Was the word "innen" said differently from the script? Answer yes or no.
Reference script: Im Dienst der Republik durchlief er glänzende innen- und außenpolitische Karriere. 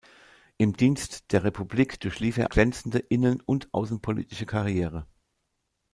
no